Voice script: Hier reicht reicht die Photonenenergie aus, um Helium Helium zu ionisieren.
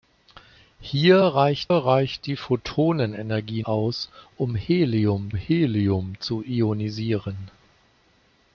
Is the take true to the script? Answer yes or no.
yes